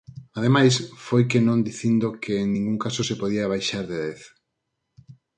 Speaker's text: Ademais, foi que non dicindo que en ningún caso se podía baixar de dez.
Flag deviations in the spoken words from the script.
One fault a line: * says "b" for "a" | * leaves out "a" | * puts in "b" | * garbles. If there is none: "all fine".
all fine